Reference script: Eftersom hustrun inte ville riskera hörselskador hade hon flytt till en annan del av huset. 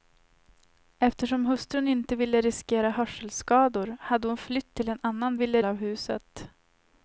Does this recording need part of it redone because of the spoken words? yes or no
yes